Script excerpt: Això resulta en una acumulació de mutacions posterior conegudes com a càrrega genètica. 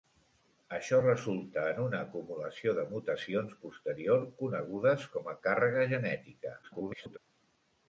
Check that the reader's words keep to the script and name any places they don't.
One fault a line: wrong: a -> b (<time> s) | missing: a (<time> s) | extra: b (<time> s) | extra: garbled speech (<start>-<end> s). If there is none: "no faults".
extra: garbled speech (6.6-7.2 s)